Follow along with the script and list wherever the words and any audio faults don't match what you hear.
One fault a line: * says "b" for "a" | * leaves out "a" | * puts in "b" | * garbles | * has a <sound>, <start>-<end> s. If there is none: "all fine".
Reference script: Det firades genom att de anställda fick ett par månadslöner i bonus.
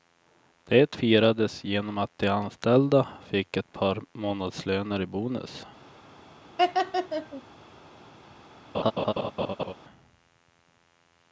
* has a laugh, 6.6-7.4 s
* has a laugh, 8.7-9.7 s